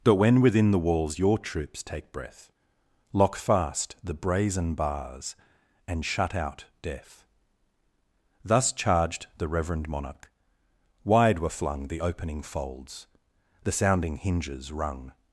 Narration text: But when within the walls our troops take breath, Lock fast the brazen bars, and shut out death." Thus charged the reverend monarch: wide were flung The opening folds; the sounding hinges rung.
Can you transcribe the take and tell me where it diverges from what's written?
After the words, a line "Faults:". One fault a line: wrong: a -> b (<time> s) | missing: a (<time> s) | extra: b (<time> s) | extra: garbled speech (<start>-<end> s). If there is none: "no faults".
But when within the walls your troops take breath, Lock fast the brazen bars, and shut out death." Thus charged the reverend monarch: wide were flung The opening folds; the sounding hinges rung.
Faults:
wrong: our -> your (1.2 s)